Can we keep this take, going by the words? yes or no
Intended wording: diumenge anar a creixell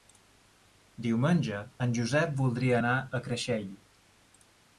no